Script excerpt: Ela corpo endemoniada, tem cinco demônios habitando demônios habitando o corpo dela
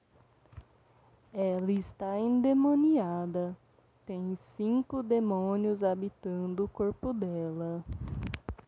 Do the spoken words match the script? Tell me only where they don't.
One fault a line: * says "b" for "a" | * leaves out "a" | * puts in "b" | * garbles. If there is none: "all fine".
* says "está" for "corpo"
* leaves out "demônios habitando"